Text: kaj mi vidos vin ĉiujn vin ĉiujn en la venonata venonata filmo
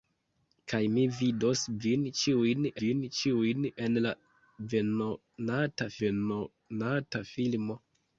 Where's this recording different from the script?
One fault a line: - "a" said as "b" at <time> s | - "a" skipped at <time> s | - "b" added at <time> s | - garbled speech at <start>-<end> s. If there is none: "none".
none